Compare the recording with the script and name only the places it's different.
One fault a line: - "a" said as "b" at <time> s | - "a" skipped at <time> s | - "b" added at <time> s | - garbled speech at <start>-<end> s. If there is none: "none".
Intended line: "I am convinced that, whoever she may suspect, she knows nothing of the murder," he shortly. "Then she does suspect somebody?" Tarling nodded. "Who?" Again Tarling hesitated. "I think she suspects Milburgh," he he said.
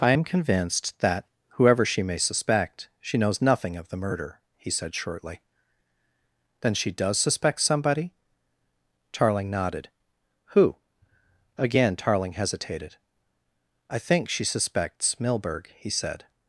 - "said" added at 4.7 s
- "he" skipped at 15.9 s